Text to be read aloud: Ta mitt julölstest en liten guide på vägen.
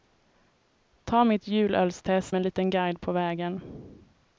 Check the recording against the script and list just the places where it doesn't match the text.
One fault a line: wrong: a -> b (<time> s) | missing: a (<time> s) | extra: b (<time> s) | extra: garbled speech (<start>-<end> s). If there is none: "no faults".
no faults